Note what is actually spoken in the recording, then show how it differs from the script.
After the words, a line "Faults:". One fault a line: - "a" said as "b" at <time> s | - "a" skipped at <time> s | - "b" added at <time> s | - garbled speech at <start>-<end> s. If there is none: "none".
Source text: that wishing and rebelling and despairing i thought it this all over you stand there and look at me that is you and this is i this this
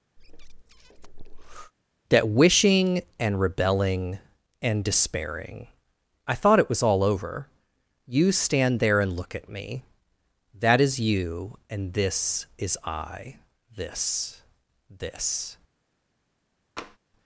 that wishing and rebelling and despairing i thought it was all over you stand there and look at me that is you and this is i this this
Faults:
- "this" said as "was" at 6.7 s